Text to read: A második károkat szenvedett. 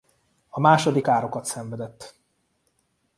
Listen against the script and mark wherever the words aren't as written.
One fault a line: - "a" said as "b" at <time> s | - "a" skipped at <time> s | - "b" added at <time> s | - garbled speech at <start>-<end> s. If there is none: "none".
none